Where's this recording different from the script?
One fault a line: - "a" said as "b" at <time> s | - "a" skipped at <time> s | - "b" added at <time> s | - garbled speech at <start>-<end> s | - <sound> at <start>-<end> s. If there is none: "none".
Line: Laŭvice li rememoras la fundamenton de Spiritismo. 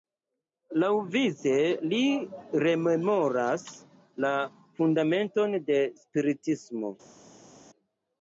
none